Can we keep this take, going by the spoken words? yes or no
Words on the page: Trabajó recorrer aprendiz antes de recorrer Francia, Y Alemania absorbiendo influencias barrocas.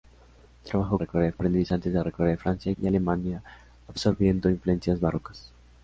yes